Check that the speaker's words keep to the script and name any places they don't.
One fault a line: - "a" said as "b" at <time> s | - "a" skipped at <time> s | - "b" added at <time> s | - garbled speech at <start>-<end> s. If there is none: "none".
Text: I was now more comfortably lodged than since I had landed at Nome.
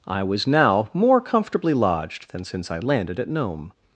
- "had" skipped at 2.8 s